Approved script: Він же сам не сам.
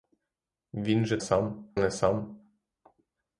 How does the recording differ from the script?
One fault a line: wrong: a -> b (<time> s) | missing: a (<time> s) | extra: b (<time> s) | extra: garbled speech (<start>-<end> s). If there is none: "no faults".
no faults